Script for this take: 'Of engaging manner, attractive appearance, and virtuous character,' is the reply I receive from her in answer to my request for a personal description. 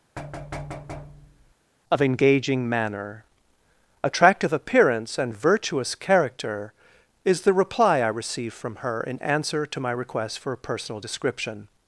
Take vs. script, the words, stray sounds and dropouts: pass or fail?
fail